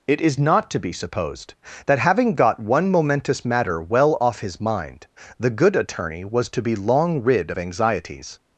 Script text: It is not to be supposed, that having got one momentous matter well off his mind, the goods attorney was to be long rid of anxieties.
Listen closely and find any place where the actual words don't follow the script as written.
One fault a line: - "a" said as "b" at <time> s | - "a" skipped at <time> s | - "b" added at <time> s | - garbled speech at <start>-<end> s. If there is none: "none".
- "goods" said as "good" at 5.5 s